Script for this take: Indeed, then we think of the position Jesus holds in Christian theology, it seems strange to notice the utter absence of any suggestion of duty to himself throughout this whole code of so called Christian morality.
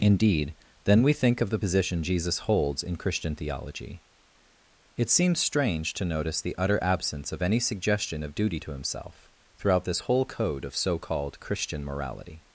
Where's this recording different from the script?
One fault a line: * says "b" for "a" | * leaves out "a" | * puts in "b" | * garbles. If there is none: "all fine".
all fine